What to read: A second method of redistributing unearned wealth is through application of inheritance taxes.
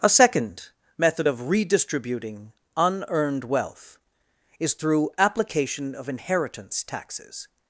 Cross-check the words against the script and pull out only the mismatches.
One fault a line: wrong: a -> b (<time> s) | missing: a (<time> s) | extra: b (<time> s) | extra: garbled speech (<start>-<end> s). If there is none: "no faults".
no faults